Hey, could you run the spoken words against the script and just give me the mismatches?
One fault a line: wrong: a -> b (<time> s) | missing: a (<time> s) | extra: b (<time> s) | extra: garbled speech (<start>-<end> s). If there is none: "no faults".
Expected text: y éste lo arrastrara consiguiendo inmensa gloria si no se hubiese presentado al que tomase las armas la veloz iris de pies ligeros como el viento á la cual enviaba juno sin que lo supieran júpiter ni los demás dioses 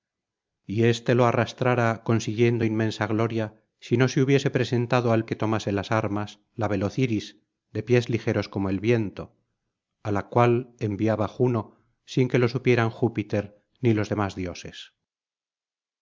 no faults